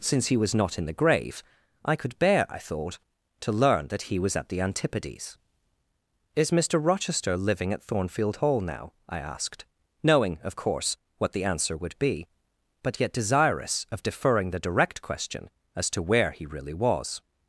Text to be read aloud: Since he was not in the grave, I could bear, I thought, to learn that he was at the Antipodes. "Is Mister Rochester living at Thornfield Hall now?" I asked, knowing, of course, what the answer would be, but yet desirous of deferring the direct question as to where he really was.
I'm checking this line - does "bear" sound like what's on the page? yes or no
yes